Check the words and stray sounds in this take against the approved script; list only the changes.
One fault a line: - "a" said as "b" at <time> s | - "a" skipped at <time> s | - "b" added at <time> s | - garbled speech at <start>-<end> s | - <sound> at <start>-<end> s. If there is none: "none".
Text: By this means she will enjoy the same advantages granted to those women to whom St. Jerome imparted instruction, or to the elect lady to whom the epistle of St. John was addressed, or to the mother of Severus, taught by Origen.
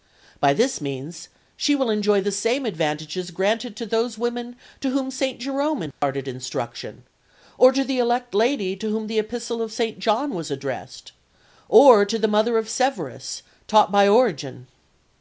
- dropout at 5.9-6.0 s